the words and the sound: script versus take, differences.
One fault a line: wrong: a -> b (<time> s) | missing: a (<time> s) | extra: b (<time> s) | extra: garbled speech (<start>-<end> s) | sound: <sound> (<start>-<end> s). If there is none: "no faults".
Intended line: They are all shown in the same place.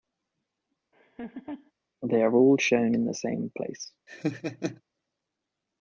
sound: laugh (0.9-1.7 s)
sound: laugh (4.1-4.8 s)